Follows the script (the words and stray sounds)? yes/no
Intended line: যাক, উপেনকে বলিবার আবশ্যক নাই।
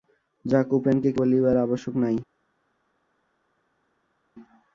yes